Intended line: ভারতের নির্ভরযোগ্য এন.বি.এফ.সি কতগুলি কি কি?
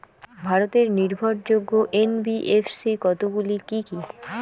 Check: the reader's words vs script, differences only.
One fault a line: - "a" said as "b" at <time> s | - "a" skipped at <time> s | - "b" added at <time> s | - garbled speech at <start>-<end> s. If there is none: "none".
none